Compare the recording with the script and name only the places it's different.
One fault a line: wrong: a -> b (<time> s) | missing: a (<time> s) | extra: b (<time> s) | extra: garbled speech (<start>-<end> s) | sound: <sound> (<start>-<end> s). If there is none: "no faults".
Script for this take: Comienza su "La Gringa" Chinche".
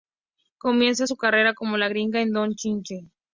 extra: carrera como (1.2 s)
extra: en Don (2.2 s)